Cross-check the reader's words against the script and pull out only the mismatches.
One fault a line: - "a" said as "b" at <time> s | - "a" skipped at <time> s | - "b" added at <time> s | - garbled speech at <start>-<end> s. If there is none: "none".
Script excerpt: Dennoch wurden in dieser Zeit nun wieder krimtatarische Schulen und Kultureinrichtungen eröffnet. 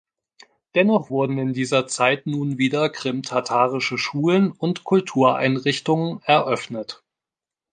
none